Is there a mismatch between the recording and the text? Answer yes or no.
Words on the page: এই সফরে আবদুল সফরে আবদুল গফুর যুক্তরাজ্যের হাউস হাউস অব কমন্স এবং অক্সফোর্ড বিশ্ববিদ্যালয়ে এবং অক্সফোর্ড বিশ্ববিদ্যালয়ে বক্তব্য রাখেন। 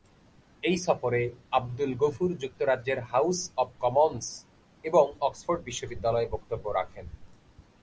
yes